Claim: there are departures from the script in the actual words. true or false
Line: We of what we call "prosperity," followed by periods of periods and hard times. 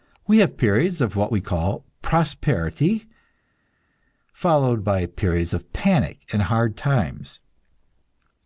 true